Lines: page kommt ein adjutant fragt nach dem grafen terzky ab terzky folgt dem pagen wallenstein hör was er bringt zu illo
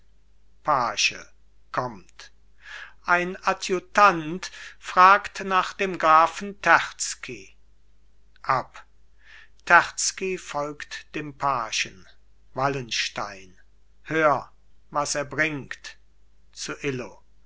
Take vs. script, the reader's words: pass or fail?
pass